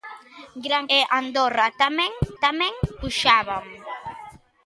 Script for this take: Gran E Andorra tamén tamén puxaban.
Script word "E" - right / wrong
right